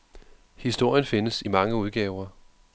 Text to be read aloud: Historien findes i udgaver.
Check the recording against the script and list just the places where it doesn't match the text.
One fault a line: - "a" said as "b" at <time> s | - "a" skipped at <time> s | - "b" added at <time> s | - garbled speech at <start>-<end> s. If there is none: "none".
- "mange" added at 1.5 s